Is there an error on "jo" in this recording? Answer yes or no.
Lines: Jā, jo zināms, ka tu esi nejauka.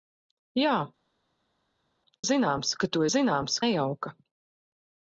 yes